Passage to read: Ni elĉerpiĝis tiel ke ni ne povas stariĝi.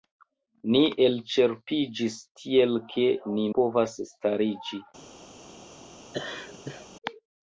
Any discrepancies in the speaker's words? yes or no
yes